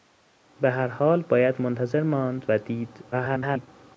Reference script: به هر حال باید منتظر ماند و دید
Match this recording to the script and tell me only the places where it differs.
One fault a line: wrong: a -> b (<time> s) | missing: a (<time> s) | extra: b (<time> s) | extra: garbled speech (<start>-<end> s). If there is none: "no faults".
extra: garbled speech (3.1-3.7 s)